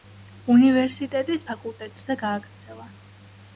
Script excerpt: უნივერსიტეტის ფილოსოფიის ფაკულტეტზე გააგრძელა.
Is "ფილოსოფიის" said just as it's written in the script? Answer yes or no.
no